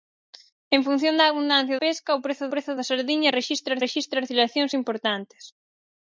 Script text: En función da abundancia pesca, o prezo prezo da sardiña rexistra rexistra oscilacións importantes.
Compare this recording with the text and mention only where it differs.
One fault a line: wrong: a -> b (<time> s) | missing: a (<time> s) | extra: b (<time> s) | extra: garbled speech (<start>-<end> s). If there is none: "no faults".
no faults